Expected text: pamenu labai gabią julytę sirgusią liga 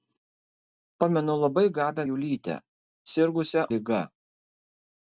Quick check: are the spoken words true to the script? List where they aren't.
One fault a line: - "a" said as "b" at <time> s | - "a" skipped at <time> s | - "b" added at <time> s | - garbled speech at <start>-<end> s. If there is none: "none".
none